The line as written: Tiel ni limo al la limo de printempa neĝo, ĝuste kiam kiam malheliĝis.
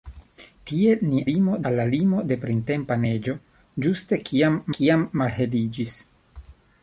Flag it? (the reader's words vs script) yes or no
no